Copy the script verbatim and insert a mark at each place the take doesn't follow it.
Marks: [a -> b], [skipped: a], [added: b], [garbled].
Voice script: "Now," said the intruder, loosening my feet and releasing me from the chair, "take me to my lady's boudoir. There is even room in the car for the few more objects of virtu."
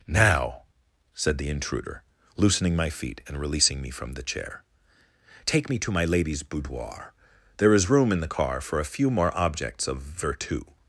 "Now," said the intruder, loosening my feet and releasing me from the chair, "take me to my lady's boudoir. There is [skipped: even] room in the car for [the -> a] few more objects of virtu."